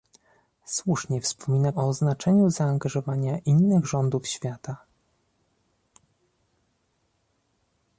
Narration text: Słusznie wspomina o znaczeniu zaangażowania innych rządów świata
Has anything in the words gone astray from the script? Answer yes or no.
no